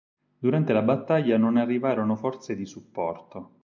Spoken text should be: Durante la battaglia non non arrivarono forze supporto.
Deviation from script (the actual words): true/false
true